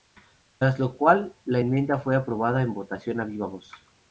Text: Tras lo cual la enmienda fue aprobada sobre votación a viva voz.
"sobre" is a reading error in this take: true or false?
true